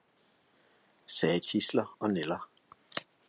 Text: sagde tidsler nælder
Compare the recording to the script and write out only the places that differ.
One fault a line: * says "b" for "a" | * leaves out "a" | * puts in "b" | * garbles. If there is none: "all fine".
* puts in "og"